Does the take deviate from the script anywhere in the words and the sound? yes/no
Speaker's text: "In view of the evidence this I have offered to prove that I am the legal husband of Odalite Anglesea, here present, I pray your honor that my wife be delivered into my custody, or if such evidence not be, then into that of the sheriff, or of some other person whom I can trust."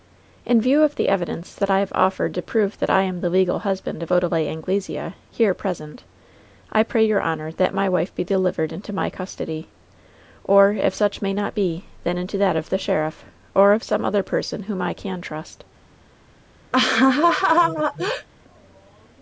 yes